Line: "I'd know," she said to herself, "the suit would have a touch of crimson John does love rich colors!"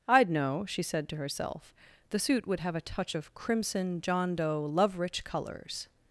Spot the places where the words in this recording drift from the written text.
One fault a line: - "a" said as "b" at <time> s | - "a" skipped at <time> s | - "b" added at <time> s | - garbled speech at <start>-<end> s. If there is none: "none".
- "does" said as "doe" at 4.3 s